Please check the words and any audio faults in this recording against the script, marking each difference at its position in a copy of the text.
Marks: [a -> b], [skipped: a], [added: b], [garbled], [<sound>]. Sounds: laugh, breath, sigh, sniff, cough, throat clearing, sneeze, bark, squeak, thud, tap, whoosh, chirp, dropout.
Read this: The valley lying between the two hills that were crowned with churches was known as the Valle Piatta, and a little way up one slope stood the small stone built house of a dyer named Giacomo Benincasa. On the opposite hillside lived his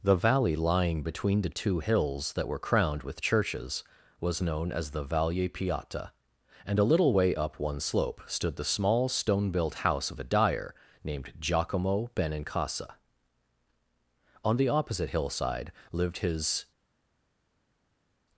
The valley lying between the two hills that were crowned with churches was known as the Valle Piatta, and a little way up one slope stood the small stone built house of a dyer named Giacomo Benincasa. On the opposite hillside lived his